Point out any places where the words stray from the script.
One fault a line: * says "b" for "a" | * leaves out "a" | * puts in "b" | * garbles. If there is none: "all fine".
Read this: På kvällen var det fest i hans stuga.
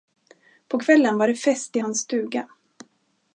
all fine